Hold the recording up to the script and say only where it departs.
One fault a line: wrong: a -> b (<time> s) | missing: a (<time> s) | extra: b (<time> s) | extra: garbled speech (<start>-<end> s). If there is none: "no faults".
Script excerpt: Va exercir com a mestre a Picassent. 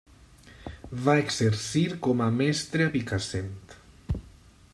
no faults